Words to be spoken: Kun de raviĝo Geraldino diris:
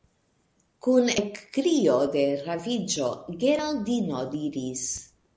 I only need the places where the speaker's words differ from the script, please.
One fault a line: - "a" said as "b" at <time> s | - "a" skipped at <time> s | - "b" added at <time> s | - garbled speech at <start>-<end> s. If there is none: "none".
- "ekkrio" added at 1.2 s